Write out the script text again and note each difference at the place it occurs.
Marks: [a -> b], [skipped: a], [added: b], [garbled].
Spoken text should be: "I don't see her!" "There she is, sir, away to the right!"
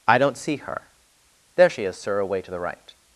"I don't see her!" "There she is, sir, away to the right!"